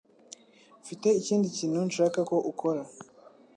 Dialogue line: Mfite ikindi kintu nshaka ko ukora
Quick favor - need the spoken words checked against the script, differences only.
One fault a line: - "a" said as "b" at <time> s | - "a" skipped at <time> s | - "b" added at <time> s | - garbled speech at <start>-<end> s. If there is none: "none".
none